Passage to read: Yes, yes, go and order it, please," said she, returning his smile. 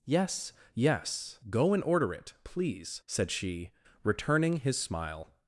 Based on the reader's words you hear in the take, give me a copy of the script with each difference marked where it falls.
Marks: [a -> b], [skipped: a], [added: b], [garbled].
Yes, yes, go and order it, please," said she, returning his smile.